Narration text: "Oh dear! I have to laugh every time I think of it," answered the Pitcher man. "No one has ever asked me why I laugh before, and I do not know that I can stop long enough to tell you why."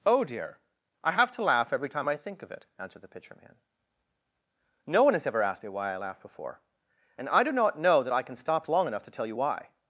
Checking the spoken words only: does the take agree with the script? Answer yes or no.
yes